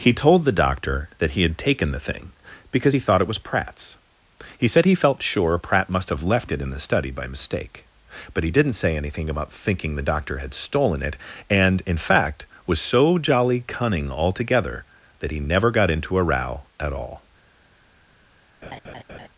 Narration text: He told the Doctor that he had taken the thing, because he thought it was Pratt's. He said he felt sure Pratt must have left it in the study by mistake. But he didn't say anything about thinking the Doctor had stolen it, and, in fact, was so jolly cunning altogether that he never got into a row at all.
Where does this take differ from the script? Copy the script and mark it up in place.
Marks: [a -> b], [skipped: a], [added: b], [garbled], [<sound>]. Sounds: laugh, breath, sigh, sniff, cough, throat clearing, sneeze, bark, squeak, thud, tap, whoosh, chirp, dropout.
He told the Doctor that he had taken the thing, because he thought it was Pratt's. He said he felt sure Pratt must have left it in the study by mistake. But he didn't say anything about thinking the Doctor had stolen it, and, in fact, was so jolly cunning altogether that he never got into a row at all. [laugh]